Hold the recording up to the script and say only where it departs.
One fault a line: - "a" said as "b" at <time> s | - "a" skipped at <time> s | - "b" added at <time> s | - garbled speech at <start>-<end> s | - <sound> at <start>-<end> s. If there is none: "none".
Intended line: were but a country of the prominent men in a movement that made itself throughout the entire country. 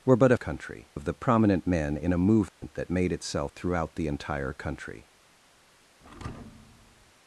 - dropout at 2.5-2.6 s
- thud at 6.0-7.1 s